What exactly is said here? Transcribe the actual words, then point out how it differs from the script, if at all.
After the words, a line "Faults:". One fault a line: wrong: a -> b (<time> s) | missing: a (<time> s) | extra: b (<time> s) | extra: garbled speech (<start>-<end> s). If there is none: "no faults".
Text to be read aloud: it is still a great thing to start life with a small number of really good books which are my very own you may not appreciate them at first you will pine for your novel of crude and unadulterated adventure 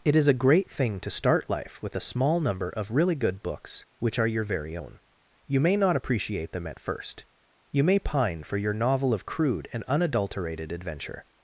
it is a great thing to start life with a small number of really good books which are your very own you may not appreciate them at first you may pine for your novel of crude and unadulterated adventure
Faults:
missing: still (0.3 s)
wrong: my -> your (4.3 s)
wrong: will -> may (7.8 s)